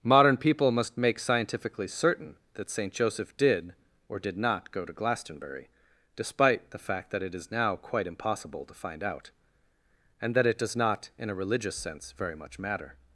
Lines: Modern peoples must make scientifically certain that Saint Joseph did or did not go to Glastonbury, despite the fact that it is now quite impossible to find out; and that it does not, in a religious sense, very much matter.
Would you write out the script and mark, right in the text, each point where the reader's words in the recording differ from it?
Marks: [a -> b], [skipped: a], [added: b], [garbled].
Modern [peoples -> people] must make scientifically certain that Saint Joseph did or did not go to Glastonbury, despite the fact that it is now quite impossible to find out; and that it does not, in a religious sense, very much matter.